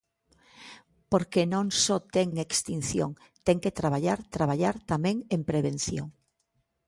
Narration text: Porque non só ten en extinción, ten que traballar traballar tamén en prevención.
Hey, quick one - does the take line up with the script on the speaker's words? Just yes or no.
yes